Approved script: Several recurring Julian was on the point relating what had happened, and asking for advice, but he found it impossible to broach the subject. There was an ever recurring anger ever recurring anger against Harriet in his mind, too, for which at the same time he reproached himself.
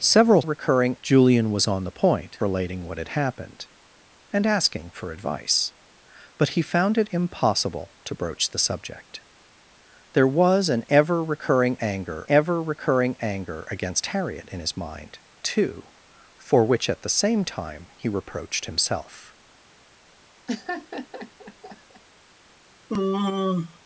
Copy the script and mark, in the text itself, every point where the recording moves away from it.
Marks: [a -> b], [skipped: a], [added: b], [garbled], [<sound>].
Several recurring Julian was on the point relating what had happened, and asking for advice, but he found it impossible to broach the subject. There was an ever recurring anger ever recurring anger against Harriet in his mind, too, for which at the same time he reproached himself. [laugh] [sigh]